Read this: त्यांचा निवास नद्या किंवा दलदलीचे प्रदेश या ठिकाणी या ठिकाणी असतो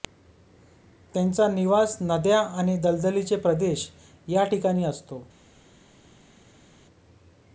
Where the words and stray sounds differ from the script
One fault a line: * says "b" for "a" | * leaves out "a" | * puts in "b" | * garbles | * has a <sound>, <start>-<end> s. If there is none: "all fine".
* says "आणि" for "किंवा"
* leaves out "या ठिकाणी"